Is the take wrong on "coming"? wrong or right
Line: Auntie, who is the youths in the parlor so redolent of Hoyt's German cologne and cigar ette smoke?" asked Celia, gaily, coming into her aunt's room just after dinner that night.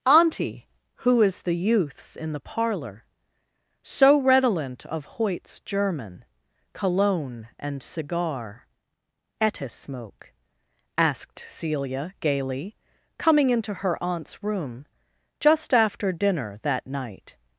right